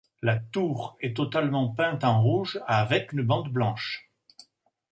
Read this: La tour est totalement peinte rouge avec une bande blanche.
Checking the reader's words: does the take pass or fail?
fail